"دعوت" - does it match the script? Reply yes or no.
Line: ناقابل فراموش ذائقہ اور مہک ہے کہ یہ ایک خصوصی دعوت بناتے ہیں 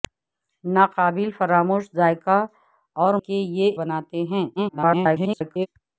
no